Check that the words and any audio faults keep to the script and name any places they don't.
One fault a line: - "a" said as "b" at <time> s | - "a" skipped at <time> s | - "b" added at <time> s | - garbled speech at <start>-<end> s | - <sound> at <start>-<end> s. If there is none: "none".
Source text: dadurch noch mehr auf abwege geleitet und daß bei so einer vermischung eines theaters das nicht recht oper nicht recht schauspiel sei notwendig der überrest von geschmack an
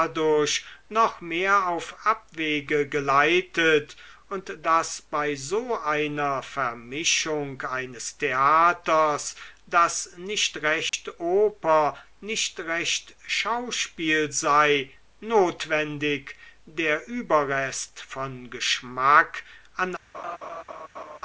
- dropout at 10.9-10.9 s
- laugh at 20.1-21.2 s